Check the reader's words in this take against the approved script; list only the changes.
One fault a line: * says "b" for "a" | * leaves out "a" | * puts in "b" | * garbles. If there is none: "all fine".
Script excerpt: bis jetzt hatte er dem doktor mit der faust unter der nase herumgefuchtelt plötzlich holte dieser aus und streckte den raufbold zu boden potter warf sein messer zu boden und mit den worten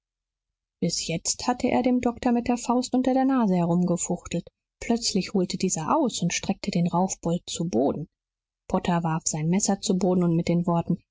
all fine